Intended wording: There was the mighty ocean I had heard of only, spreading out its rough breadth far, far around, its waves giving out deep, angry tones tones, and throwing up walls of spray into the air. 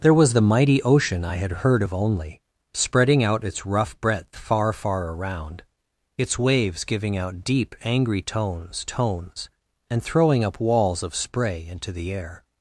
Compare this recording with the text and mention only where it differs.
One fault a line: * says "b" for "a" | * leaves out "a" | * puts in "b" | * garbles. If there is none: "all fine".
all fine